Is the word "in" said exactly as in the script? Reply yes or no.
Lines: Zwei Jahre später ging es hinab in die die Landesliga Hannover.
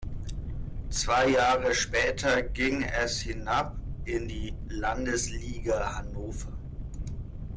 yes